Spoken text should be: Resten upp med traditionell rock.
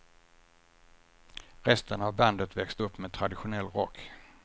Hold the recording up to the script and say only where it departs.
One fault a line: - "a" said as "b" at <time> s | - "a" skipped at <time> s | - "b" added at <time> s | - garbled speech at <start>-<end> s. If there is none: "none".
- "av bandet växte" added at 2.0 s